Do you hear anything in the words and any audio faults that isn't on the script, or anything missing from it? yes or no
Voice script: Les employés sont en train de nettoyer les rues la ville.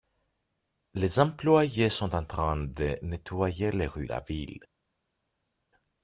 no